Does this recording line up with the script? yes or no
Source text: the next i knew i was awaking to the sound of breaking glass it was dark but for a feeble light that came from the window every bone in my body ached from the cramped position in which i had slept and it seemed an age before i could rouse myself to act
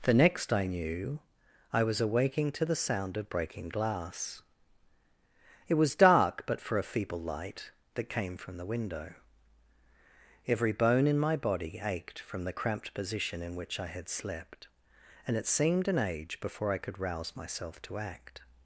yes